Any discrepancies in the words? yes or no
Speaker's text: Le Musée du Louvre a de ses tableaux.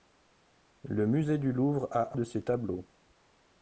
no